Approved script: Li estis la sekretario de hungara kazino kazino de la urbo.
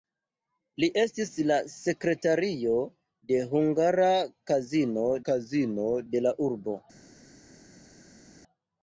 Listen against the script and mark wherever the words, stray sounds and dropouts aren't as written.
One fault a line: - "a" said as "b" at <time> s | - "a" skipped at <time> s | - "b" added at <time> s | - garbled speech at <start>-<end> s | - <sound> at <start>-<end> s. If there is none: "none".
none